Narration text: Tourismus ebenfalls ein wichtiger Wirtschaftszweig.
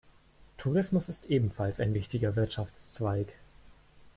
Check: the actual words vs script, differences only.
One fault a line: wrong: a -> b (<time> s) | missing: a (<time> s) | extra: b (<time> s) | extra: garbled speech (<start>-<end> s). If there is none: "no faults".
extra: ist (1.1 s)